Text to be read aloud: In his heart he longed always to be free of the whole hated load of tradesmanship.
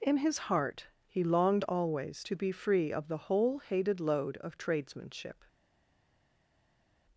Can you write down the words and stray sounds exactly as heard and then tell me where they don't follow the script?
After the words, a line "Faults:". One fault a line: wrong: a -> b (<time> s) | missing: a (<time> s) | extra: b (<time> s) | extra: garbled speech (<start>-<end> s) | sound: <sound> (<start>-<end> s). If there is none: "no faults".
In his heart he longed always to be free of the whole hated load of tradesmanship.
Faults:
no faults